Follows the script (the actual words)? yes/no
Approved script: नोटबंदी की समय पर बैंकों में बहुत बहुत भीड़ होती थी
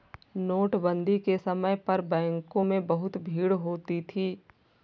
no